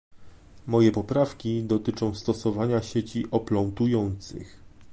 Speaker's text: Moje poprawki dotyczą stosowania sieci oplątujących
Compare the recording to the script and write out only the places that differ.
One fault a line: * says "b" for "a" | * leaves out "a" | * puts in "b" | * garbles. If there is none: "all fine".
all fine